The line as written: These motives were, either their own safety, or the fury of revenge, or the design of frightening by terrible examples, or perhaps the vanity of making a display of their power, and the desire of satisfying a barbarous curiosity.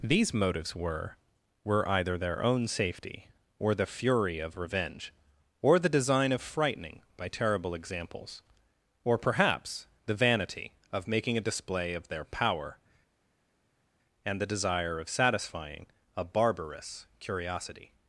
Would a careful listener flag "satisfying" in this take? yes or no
no